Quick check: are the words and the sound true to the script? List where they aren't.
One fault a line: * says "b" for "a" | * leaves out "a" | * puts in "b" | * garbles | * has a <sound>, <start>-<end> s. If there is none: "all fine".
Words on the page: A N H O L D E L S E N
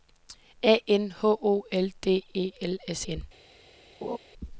* leaves out "E"
* has a laugh, 4.0-4.2 s